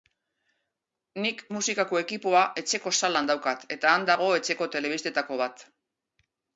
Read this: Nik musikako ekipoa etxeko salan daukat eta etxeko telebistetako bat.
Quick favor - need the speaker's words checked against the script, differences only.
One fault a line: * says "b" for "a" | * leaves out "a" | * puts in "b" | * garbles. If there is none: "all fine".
* puts in "han dago"